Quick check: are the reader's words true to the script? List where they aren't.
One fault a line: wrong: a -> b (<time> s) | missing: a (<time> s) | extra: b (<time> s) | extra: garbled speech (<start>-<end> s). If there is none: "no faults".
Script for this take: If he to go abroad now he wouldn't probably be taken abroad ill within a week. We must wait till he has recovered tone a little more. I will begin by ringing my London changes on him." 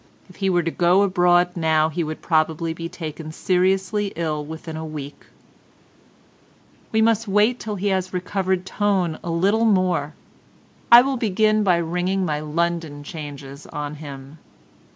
extra: were (0.5 s)
wrong: wouldn't -> would (2.0 s)
wrong: abroad -> seriously (3.3 s)